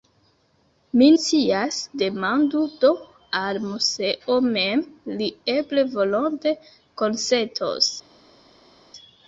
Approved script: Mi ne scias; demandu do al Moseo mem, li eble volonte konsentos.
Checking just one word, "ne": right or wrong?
wrong